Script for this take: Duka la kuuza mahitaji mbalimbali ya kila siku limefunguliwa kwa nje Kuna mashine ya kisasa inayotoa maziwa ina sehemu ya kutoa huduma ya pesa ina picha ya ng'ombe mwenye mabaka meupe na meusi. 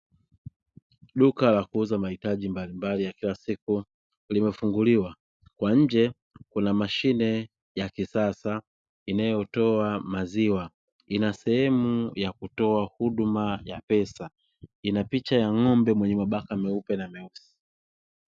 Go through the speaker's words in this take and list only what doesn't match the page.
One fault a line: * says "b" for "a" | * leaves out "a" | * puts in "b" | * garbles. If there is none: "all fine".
all fine